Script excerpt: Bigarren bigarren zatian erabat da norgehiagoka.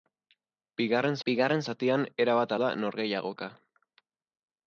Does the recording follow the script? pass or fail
pass